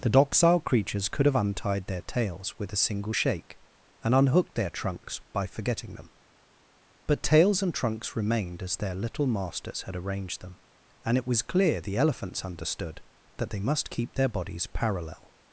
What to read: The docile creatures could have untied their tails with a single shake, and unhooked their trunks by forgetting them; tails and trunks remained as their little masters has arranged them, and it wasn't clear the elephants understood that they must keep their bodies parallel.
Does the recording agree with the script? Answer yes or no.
no